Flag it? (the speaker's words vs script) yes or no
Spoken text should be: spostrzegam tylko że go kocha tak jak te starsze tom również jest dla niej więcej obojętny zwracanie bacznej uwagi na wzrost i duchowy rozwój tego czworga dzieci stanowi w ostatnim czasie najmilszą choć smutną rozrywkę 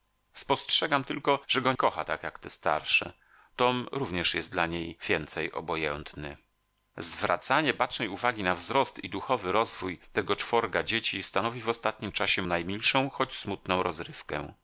no